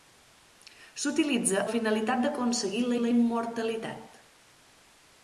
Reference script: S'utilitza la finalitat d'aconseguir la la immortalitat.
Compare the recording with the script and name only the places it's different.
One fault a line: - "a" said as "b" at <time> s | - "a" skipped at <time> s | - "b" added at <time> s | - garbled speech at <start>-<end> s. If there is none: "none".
none